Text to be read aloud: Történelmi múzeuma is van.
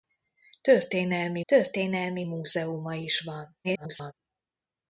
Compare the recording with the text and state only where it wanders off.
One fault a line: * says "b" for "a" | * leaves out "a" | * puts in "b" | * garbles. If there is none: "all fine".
* puts in "történelmi"
* garbles